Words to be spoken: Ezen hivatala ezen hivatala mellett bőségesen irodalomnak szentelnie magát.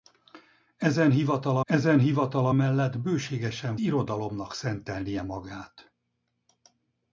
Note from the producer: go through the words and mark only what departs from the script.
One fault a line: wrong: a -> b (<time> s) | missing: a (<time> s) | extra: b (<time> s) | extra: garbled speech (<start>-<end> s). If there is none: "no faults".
no faults